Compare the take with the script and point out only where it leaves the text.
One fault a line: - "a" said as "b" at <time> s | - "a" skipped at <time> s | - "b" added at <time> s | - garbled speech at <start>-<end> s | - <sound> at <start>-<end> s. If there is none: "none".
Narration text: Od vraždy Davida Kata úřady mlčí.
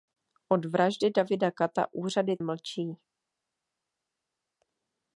none